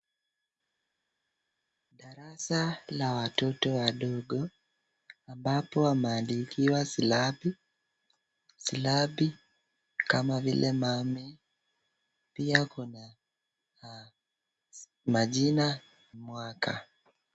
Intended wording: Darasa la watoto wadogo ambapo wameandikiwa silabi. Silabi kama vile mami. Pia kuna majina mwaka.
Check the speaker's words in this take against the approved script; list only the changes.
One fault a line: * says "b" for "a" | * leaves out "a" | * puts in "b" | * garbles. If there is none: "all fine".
all fine